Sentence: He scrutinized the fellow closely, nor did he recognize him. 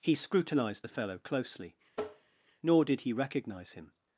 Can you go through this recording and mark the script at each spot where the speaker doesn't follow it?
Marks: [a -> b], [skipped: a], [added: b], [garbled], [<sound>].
He scrutinized the fellow closely, [tap] nor did he recognize him.